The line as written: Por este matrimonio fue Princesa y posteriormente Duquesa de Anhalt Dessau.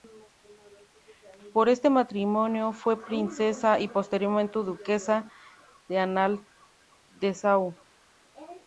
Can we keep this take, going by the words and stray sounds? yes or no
yes